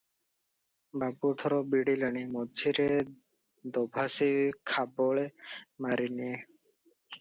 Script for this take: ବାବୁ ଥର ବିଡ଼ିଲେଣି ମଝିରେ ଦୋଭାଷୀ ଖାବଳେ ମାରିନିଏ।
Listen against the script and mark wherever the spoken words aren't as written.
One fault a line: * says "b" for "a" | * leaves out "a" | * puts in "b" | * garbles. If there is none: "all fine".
all fine